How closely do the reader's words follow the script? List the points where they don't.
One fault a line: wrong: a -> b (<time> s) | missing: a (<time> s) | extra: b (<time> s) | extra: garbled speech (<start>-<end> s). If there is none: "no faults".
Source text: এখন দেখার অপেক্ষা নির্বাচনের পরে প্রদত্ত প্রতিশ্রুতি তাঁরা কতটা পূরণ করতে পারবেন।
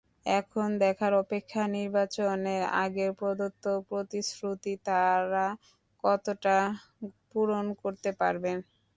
wrong: পরে -> আগে (2.8 s)